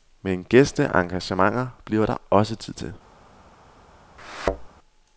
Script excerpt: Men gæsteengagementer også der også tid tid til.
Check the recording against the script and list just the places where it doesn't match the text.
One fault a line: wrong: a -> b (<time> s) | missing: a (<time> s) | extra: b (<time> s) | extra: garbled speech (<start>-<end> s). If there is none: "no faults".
wrong: også -> bliver (1.9 s)
missing: tid (2.7 s)